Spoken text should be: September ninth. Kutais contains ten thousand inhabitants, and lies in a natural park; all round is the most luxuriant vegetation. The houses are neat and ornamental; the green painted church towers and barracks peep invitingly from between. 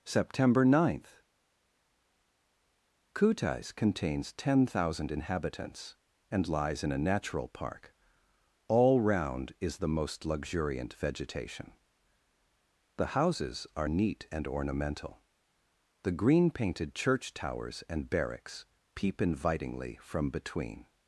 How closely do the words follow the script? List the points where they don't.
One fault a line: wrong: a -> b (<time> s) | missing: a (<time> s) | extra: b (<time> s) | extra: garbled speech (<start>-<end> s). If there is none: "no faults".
no faults